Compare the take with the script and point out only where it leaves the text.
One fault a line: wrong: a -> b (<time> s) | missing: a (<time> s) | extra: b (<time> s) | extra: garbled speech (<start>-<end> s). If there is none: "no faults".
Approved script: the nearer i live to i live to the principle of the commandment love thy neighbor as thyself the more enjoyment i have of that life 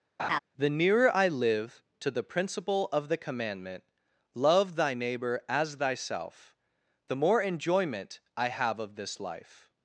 missing: i live to (2.1 s)
wrong: that -> this (9.0 s)